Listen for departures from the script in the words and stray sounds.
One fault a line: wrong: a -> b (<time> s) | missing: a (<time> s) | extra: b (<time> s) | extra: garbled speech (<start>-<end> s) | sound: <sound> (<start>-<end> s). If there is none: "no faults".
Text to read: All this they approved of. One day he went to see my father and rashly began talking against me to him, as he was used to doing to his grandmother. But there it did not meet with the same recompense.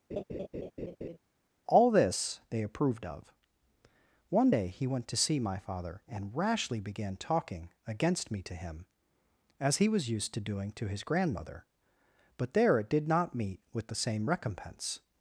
sound: laugh (0.1-1.2 s)